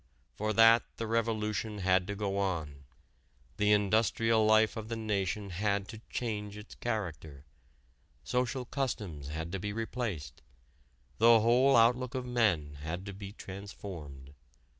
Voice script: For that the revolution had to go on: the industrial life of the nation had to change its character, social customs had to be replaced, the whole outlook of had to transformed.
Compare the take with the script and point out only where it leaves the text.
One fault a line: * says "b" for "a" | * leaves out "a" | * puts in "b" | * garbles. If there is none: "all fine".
* puts in "men"
* puts in "be"